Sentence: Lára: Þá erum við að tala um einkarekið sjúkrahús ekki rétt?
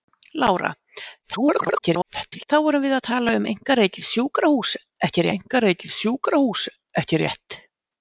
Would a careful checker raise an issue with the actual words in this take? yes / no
yes